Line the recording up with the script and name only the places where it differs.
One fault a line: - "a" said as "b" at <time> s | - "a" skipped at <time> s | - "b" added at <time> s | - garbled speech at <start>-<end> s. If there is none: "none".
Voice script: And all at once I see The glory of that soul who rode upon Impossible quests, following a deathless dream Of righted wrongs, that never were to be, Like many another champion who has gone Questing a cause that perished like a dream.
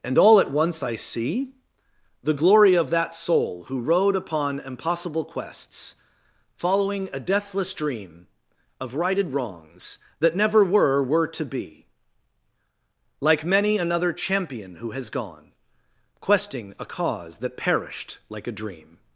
- "were" added at 11.0 s